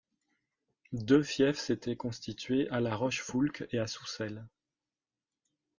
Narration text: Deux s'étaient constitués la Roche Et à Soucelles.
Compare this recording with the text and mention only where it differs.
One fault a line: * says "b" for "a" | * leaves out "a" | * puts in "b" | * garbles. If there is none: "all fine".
* puts in "fiefs"
* puts in "à"
* puts in "Foulques"